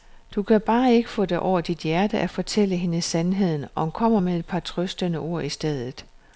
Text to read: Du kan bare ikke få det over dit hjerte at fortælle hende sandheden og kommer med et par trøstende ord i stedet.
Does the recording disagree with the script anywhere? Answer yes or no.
no